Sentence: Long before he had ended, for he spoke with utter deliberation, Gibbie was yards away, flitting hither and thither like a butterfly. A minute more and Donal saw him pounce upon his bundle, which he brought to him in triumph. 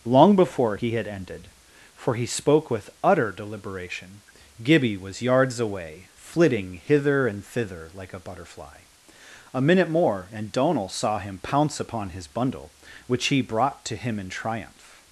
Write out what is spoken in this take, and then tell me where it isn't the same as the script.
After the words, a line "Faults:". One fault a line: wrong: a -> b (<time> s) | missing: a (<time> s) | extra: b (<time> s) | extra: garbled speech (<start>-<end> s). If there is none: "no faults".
Long before he had ended, for he spoke with utter deliberation, Gibbie was yards away, flitting hither and thither like a butterfly. A minute more and Donal saw him pounce upon his bundle, which he brought to him in triumph.
Faults:
no faults